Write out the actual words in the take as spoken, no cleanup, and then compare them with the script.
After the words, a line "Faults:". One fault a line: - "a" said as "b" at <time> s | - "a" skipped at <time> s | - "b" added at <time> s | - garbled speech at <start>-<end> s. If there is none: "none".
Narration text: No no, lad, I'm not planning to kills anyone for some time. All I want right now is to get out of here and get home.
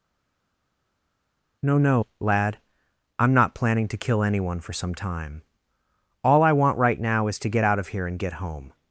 No no, lad, I'm not planning to kill anyone for some time. All I want right now is to get out of here and get home.
Faults:
- "kills" said as "kill" at 4.0 s